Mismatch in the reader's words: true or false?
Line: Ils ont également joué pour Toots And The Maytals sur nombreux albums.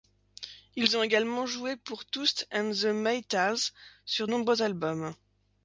false